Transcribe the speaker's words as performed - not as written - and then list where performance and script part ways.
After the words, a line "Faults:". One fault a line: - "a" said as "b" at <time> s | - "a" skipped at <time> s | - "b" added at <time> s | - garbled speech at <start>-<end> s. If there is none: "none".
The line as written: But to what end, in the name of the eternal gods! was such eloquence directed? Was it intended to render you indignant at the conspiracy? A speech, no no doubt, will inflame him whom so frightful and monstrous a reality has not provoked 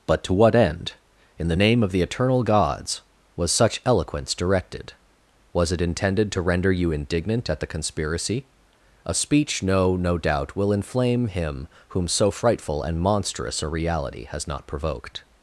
But to what end, in the name of the eternal gods! was such eloquence directed? Was it intended to render you indignant at the conspiracy? A speech, no no doubt, will inflame him whom so frightful and monstrous a reality has not provoked
Faults:
none